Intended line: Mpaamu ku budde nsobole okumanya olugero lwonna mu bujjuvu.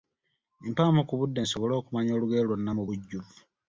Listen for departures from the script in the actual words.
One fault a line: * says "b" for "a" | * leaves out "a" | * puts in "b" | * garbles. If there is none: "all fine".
all fine